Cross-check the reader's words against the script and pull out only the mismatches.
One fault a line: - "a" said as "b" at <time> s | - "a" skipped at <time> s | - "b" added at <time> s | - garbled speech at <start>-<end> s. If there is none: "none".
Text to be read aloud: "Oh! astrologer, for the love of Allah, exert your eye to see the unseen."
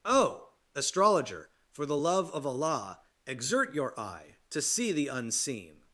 none